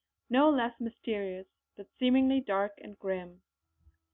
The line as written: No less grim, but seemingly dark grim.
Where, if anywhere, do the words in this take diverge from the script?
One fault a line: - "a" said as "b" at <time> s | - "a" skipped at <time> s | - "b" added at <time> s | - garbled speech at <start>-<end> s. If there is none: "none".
- "grim" said as "mysterious" at 0.8 s
- "and" added at 2.8 s